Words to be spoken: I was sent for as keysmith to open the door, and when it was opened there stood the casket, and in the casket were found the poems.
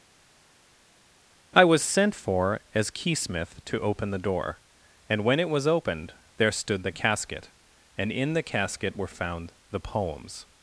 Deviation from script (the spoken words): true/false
false